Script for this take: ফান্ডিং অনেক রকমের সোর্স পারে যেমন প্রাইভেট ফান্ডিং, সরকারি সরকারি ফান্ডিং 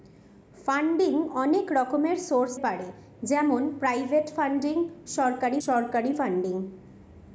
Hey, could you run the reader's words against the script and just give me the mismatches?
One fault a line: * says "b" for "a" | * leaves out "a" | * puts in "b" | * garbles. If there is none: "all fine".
all fine